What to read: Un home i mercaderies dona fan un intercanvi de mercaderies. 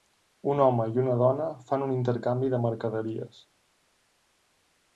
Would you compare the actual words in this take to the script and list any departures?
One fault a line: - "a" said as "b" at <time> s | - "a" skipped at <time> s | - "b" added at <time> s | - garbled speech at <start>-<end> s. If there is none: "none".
- "mercaderies" said as "una" at 1.0 s